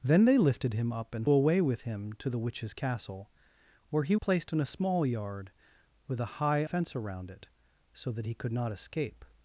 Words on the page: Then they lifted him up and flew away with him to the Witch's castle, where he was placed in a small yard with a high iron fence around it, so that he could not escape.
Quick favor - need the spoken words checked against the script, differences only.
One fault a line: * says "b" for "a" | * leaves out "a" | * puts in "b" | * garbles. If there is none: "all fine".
* leaves out "flew"
* leaves out "was"
* leaves out "iron"